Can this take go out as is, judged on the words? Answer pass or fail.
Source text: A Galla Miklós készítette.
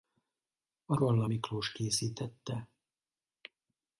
pass